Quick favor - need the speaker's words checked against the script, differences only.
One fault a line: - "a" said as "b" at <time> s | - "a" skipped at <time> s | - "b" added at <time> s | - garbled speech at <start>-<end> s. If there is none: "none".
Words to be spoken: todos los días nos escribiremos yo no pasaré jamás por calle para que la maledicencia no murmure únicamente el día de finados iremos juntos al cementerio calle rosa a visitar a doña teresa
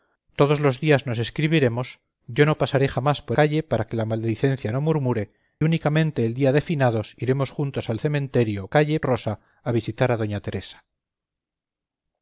none